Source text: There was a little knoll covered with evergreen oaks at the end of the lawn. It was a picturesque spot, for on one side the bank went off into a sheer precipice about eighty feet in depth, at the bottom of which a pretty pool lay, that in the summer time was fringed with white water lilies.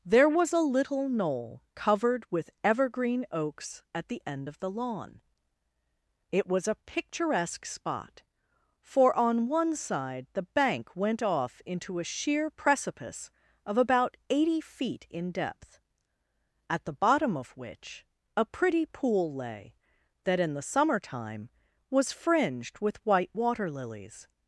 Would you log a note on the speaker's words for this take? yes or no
yes